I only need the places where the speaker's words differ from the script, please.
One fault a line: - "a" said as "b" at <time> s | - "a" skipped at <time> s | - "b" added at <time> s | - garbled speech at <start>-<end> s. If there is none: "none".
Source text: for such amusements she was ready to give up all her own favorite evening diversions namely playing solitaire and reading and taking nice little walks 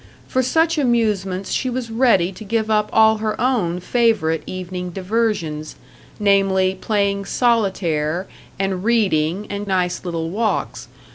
- "taking" skipped at 9.7 s